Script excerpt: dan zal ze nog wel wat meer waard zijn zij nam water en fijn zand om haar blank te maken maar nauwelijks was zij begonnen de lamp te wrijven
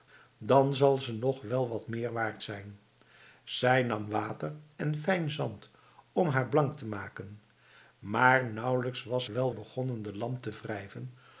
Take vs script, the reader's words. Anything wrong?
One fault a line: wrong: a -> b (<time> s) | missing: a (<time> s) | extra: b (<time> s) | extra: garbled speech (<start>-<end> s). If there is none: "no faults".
wrong: zij -> wel (9.3 s)